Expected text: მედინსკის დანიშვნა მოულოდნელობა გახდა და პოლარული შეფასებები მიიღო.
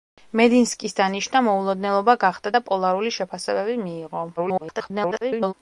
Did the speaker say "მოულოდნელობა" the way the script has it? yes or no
yes